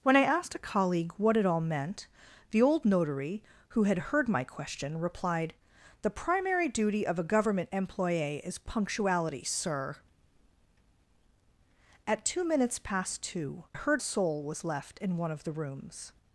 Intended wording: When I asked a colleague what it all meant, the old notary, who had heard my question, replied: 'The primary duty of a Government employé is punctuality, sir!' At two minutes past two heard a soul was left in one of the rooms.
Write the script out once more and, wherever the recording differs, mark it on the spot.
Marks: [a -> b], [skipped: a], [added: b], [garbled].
When I asked a colleague what it all meant, the old notary, who had heard my question, replied: 'The primary duty of a Government employé is punctuality, sir!' At two minutes past two heard a soul was left in one of the rooms.